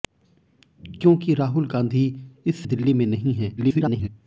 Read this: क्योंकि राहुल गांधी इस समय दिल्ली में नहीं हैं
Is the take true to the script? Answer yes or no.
no